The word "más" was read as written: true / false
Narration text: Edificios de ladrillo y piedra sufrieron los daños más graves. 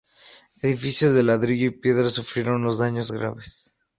false